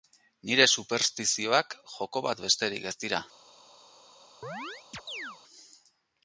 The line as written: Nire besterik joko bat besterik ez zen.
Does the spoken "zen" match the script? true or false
false